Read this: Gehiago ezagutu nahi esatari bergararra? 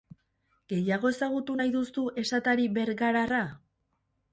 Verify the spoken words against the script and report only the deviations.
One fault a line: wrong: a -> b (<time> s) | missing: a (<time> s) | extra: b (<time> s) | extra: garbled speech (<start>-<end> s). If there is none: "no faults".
extra: duzu (1.7 s)